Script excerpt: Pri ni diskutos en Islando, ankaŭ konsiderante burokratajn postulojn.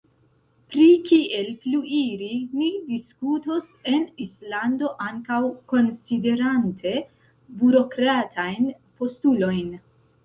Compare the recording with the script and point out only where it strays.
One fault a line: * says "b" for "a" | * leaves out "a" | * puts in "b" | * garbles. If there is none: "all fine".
* puts in "kiel pluiri"